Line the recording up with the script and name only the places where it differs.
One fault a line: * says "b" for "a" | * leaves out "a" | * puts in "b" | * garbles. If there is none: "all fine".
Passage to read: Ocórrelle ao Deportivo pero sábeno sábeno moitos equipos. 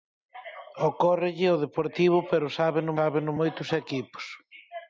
all fine